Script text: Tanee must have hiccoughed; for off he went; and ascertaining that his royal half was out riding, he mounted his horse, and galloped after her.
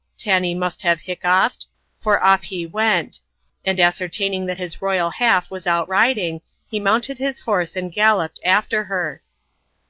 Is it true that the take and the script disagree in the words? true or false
false